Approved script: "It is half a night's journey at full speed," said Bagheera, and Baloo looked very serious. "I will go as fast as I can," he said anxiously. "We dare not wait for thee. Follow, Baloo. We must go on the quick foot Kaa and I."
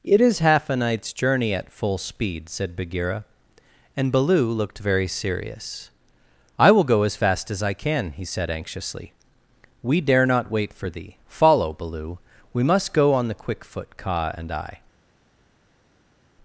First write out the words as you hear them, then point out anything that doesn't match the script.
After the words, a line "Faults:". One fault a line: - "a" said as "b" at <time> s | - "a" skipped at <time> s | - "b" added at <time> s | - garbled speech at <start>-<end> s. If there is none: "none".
"It is half a night's journey at full speed," said Bagheera, and Baloo looked very serious. "I will go as fast as I can," he said anxiously. "We dare not wait for thee. Follow, Baloo. We must go on the quick foot Kaa and I."
Faults:
none